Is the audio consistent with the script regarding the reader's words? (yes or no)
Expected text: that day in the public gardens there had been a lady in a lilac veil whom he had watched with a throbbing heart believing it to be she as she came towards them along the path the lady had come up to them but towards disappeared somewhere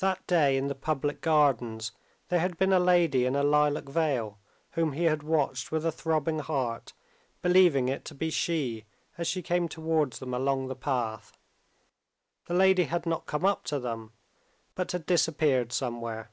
no